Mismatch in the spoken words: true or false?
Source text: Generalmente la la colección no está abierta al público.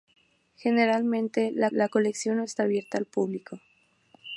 false